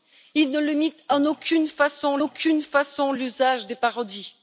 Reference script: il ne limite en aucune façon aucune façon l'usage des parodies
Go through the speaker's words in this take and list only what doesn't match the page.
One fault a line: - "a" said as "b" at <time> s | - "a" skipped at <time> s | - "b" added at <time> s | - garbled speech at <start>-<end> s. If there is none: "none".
none